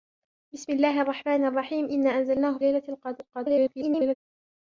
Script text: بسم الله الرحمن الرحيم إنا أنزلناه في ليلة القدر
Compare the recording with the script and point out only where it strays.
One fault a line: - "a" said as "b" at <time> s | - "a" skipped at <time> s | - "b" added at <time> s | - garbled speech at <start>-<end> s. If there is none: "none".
- "في" skipped at 2.6 s
- garbled speech at 3.3-4.2 s